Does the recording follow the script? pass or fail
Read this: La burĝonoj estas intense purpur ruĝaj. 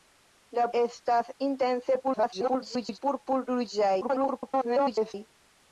fail